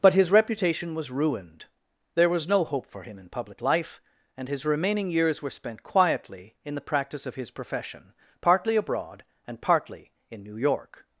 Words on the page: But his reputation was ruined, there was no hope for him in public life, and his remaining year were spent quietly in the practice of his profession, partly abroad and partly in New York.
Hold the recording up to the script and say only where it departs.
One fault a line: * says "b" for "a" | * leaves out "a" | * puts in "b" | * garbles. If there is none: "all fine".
* says "years" for "year"